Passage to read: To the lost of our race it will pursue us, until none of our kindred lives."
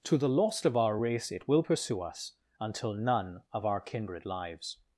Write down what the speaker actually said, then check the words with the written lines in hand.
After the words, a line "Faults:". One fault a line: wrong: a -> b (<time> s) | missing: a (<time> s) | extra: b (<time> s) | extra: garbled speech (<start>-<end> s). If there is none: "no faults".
To the lost of our race it will pursue us, until none of our kindred lives."
Faults:
no faults